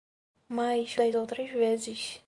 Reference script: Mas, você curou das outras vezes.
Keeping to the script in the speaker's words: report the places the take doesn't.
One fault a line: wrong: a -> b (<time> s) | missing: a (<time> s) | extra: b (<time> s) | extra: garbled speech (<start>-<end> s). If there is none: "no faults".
missing: você curou (1.0 s)